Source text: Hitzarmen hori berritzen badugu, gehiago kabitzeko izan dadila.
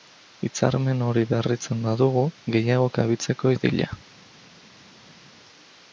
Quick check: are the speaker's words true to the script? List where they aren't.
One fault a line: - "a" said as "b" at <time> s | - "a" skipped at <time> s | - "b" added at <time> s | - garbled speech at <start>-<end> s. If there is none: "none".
- "izan" skipped at 3.5 s